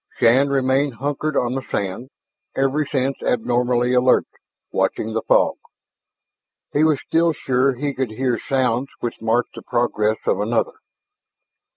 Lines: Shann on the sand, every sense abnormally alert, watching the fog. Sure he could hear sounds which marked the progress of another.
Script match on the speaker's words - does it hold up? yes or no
no